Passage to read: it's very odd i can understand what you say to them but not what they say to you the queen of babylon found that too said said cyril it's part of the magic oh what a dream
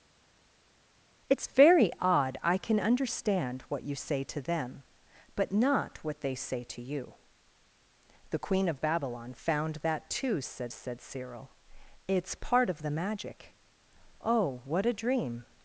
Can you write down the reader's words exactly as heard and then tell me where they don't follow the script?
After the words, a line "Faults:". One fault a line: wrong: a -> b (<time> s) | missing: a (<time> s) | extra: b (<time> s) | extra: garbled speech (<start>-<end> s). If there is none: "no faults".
it's very odd i can understand what you say to them but not what they say to you the queen of babylon found that too said said cyril it's part of the magic oh what a dream
Faults:
no faults